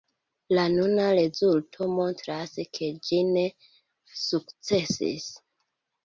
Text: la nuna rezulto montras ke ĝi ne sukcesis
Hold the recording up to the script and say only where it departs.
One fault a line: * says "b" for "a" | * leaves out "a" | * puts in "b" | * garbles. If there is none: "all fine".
all fine